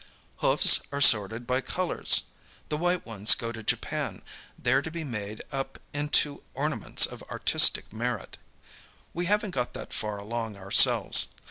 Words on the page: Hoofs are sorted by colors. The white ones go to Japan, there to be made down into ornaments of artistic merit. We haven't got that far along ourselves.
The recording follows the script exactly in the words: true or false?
false